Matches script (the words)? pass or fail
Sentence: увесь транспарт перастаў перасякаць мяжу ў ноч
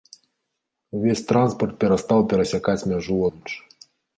pass